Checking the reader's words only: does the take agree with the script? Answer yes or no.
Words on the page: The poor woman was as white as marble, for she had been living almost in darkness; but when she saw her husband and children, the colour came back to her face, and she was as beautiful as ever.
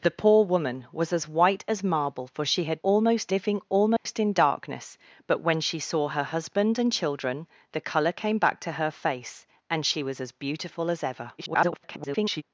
no